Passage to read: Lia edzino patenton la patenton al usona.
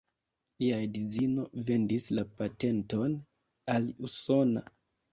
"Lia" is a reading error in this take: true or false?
false